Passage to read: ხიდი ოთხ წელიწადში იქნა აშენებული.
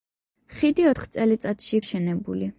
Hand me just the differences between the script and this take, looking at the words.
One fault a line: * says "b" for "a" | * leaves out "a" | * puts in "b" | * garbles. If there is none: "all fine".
* leaves out "იქნა"